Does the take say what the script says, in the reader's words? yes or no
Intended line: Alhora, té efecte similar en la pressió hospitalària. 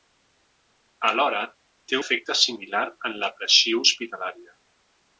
yes